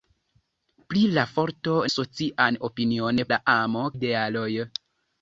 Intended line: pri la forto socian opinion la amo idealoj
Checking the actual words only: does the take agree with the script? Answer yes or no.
yes